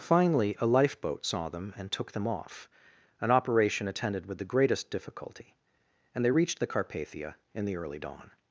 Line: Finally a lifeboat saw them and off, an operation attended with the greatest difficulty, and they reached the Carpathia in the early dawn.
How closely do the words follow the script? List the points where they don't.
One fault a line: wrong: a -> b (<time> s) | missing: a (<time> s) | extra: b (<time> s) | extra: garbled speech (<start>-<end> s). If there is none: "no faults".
extra: took them (1.9 s)